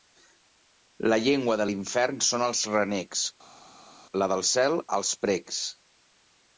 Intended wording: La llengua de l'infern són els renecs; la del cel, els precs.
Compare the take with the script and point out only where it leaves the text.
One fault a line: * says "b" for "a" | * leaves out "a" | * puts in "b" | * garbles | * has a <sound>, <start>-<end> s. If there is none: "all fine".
all fine